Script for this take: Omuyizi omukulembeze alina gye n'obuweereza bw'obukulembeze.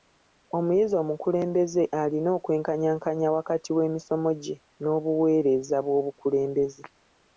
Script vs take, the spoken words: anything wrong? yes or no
yes